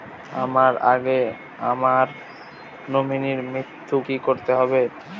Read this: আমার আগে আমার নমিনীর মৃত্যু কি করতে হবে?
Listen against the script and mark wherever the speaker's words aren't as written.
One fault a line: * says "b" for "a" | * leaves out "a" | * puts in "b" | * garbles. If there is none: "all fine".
all fine